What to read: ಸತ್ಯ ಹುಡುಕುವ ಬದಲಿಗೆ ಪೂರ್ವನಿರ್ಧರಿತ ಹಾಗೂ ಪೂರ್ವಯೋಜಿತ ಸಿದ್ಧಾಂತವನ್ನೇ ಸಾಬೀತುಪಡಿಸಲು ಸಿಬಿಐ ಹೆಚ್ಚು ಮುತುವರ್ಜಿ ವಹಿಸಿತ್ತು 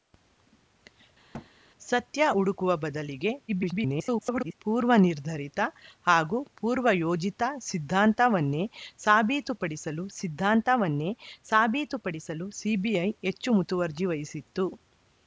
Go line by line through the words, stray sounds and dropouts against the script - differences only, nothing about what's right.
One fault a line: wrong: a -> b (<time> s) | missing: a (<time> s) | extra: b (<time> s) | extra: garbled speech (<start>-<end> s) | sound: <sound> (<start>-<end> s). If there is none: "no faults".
sound: thud (1.3-1.5 s)
extra: garbled speech (3.5-4.5 s)
extra: ಸಿದ್ಧಾಂತವನ್ನೇ ಸಾಬೀತುಪಡಿಸಲು (10.2 s)